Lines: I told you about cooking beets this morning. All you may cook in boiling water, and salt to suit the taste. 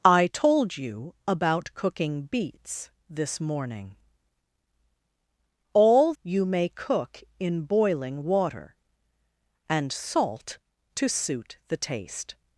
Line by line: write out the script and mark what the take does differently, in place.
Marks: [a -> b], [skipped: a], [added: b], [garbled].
I told you about cooking beets this morning. All you may cook in boiling water, and salt to suit the taste.